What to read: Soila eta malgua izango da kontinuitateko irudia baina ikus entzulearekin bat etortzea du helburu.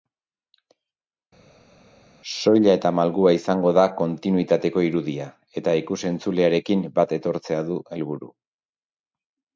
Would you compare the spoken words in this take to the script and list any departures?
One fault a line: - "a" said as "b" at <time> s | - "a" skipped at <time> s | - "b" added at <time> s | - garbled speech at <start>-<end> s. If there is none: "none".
- "baina" said as "eta" at 5.6 s